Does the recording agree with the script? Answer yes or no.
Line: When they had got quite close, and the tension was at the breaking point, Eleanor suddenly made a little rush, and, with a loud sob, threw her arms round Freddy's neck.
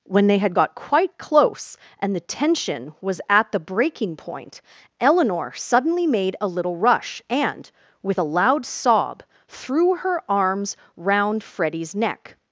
yes